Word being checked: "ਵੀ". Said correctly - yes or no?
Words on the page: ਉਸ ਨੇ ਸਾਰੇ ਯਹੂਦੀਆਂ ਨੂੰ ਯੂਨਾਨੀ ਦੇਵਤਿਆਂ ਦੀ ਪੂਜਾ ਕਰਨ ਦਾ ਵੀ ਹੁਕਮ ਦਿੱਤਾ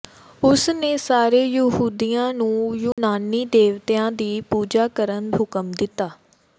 no